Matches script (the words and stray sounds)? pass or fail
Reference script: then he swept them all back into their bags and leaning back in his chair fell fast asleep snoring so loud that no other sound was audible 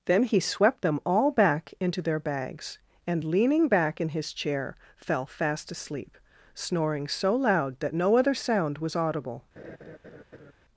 fail